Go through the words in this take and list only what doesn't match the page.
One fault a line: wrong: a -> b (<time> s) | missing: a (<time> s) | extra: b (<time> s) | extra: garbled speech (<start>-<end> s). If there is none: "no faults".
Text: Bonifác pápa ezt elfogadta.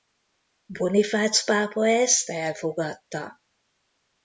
no faults